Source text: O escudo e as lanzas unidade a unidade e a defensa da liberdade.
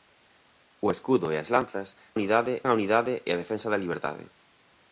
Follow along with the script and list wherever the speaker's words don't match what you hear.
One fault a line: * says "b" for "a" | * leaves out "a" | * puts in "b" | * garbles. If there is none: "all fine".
all fine